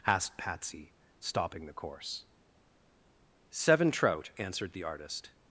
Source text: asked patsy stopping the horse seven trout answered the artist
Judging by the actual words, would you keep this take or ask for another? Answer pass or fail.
fail